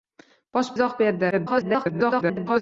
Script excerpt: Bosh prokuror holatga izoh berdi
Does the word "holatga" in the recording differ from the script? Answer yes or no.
yes